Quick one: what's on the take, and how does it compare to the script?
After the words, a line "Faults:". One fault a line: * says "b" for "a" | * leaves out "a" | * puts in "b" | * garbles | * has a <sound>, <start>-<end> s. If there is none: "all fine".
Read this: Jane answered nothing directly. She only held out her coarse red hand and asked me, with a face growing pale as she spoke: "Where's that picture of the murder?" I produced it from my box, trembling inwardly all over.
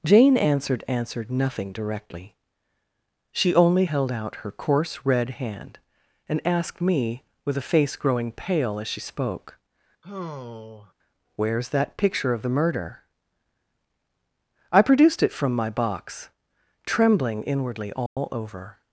Jane answered answered nothing directly. She only held out her coarse red hand and asked me, with a face growing pale as she spoke: "Where's that picture of the murder?" I produced it from my box, trembling inwardly all over.
Faults:
* puts in "answered"
* has a sigh, 10.0-10.9 s
* has a dropout, 18.1-18.2 s